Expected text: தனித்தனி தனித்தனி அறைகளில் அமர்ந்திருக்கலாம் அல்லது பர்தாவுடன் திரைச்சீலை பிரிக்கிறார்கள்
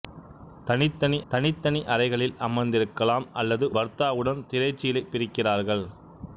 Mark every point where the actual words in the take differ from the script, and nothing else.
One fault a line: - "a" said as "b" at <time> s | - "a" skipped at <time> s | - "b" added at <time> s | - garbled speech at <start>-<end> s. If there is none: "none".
none